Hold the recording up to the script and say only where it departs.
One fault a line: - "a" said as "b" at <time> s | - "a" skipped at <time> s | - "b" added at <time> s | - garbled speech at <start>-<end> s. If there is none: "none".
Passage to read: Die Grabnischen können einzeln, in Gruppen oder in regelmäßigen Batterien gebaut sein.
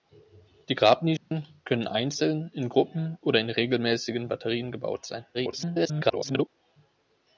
- garbled speech at 5.3-6.5 s